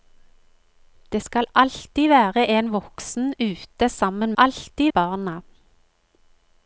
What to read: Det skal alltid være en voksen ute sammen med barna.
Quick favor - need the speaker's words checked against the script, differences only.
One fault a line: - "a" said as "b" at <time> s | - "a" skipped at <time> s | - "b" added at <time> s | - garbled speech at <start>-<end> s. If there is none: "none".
- "med" said as "alltid" at 4.4 s